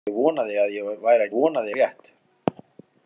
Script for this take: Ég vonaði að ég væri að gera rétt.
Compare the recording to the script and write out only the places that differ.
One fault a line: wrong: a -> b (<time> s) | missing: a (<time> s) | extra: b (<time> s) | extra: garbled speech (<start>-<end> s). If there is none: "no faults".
wrong: gera -> vonaði (1.3 s)